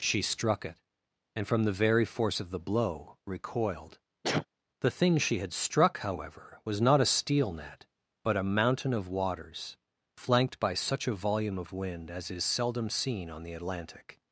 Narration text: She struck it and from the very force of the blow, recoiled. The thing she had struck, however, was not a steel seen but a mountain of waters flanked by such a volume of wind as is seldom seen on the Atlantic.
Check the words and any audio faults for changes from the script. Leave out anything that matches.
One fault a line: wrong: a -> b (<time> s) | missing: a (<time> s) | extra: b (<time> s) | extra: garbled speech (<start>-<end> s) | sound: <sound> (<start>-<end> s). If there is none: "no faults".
sound: sneeze (4.2-4.5 s)
wrong: seen -> net (7.5 s)